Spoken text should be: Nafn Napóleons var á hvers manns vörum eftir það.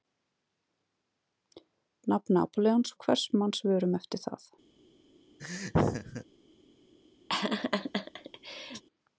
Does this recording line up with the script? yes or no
no